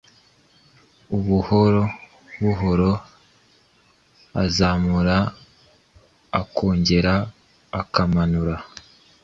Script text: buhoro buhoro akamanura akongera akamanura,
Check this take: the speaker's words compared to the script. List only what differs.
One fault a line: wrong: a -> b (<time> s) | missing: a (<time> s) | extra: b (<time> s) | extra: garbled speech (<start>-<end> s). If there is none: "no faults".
wrong: akamanura -> azamura (4.4 s)